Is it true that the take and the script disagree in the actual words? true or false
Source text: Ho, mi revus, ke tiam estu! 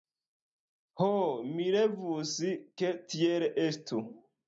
true